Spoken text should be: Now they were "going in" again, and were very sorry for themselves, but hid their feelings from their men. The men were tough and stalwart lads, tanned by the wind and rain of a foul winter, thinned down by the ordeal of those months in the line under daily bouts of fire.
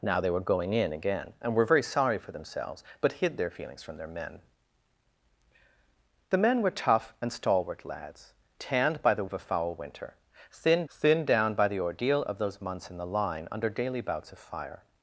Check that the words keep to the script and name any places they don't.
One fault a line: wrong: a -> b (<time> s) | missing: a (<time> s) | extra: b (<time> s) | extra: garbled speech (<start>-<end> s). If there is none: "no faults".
missing: wind and rain (9.2 s)
extra: thinned (10.9 s)